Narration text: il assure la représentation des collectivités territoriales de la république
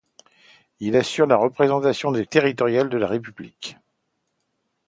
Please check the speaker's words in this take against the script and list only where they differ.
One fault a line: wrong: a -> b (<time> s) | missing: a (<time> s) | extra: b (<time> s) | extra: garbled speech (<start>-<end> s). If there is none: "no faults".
missing: collectivités (2.2 s)